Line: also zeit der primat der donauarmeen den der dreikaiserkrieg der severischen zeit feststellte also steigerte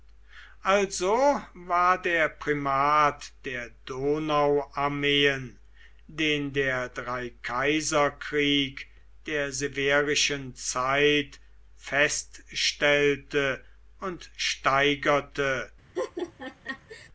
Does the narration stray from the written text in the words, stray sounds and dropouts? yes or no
yes